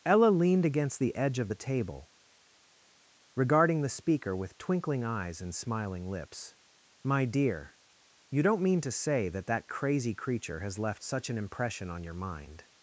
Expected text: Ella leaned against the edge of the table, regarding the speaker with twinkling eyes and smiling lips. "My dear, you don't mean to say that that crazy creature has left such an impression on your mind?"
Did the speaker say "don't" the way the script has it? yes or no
yes